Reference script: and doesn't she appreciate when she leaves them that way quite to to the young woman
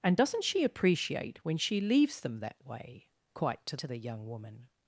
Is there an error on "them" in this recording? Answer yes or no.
no